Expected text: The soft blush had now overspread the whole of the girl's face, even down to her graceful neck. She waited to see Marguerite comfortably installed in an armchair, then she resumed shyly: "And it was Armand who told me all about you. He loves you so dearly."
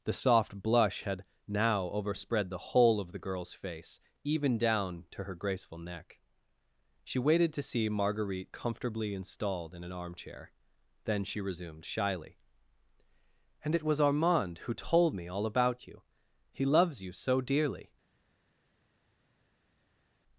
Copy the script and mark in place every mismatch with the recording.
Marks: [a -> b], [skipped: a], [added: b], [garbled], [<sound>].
The soft blush had now overspread the whole of the girl's face, even down to her graceful neck. She waited to see Marguerite comfortably installed in an armchair, then she resumed shyly: "And it was Armand who told me all about you. He loves you so dearly."